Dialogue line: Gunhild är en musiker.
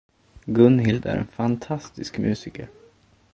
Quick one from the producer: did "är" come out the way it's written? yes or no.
yes